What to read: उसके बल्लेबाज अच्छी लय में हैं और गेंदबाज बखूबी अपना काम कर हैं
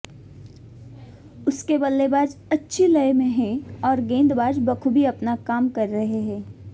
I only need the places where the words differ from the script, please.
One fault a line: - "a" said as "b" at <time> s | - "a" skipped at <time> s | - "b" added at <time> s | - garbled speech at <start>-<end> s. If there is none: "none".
- "रहे" added at 5.9 s